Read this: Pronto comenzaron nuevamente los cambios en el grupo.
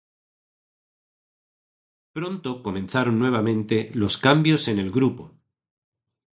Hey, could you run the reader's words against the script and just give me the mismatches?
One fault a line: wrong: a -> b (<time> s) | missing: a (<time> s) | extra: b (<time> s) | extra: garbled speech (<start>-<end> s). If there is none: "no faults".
no faults